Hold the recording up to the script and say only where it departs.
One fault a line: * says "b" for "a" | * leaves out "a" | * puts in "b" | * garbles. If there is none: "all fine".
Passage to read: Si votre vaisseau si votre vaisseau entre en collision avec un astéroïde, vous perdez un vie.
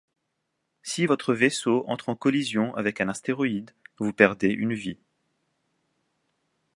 * leaves out "si votre vaisseau"
* says "une" for "un"